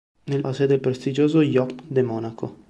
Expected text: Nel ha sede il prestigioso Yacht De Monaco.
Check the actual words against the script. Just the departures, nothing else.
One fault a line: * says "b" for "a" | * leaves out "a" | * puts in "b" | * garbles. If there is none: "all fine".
all fine